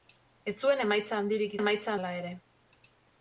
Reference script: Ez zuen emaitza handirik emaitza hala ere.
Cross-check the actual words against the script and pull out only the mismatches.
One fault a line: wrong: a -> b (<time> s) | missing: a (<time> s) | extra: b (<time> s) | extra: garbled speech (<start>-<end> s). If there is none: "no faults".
no faults